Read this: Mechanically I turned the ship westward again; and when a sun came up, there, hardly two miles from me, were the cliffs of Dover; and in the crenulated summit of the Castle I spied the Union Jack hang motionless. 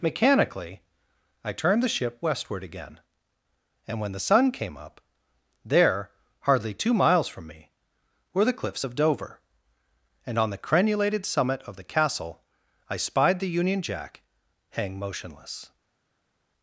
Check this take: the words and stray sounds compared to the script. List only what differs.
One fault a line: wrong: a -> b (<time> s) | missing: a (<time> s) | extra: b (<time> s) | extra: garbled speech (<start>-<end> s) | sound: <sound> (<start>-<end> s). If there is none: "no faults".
wrong: a -> the (4.1 s)
wrong: in -> on (10.4 s)